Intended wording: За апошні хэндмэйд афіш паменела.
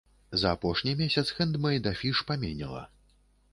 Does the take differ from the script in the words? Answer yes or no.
yes